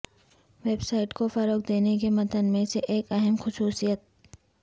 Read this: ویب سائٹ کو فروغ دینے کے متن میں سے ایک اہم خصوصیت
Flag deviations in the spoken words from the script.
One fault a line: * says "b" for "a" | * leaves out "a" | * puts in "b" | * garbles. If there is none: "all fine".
all fine